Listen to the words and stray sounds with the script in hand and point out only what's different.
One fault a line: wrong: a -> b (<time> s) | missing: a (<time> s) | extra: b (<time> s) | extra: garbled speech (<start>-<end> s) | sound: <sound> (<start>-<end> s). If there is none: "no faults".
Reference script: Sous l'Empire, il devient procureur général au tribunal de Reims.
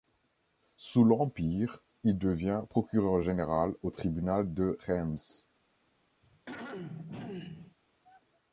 sound: throat clearing (6.2-7.8 s)